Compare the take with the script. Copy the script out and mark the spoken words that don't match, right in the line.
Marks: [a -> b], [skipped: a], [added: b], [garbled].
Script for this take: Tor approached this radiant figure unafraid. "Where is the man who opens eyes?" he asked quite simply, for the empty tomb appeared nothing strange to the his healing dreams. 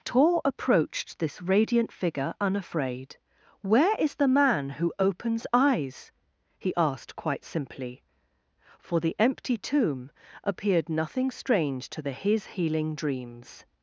Tor approached this radiant figure unafraid. "Where is the man who opens eyes?" he asked quite simply, for the empty tomb appeared nothing strange to the his healing dreams.